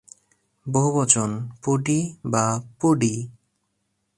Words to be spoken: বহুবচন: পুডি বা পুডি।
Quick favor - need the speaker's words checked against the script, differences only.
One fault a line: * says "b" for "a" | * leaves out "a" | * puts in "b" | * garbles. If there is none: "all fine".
all fine